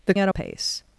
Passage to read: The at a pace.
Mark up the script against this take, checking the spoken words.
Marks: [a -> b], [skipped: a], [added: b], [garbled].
The at a pace.